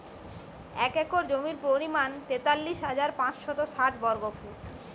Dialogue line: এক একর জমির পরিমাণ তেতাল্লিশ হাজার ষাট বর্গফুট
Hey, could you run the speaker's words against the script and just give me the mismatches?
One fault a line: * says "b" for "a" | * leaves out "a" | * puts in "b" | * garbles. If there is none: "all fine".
* puts in "পাঁচশত"